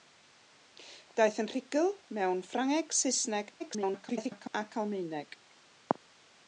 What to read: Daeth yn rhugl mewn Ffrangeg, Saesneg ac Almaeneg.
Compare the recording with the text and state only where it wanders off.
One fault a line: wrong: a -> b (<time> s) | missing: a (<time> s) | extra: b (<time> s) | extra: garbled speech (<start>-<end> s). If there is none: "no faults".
extra: garbled speech (3.6-4.5 s)